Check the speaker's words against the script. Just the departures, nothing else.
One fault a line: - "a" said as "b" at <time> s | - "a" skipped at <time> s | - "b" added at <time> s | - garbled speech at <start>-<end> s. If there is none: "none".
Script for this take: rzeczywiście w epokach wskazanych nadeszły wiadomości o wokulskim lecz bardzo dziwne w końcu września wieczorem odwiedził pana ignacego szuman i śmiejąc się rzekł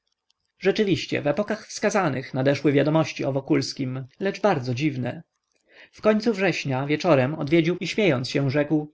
- "pana ignacego szuman" skipped at 7.8 s